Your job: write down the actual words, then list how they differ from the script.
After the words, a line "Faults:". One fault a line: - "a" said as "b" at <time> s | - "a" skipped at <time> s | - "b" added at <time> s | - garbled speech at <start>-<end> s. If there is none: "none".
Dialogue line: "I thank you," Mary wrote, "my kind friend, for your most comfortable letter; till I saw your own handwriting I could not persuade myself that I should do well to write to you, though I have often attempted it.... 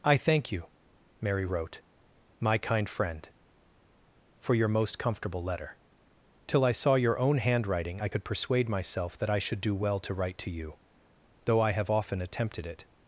"I thank you," Mary wrote, "my kind friend, for your most comfortable letter; till I saw your own handwriting I could persuade myself that I should do well to write to you, though I have often attempted it....
Faults:
- "not" skipped at 8.2 s